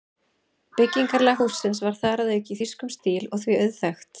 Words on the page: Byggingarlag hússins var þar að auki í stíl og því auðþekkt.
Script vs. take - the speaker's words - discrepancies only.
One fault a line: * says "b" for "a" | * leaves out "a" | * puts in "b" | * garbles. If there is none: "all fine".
* puts in "þýskum"